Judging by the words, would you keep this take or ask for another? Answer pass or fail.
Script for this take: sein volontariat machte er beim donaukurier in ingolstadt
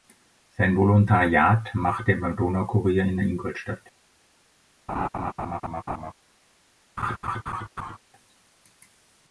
pass